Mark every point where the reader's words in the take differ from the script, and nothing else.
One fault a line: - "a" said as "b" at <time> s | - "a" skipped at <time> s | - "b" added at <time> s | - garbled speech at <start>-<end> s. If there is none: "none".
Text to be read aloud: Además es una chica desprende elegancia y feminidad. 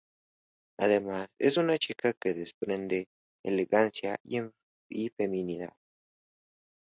- "que" added at 2.2 s